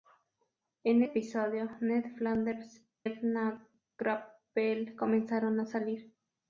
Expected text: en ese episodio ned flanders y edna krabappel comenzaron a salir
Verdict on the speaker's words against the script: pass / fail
fail